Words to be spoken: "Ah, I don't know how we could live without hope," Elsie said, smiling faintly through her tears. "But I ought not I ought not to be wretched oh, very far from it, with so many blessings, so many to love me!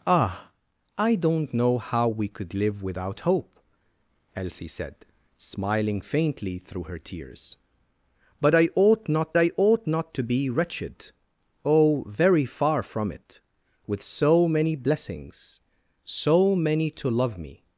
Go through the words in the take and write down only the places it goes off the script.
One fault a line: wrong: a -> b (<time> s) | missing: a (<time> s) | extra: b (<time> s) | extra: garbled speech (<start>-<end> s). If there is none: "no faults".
no faults